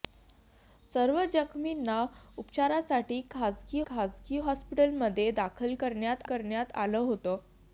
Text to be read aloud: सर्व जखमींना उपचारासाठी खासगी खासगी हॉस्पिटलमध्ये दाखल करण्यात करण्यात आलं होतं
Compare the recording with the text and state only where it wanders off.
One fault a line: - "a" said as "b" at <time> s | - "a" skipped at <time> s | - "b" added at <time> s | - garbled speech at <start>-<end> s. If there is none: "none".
none